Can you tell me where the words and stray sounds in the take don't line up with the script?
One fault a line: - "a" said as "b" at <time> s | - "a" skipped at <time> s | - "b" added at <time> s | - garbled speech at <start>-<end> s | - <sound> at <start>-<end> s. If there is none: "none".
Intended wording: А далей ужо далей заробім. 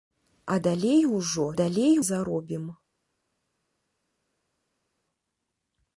none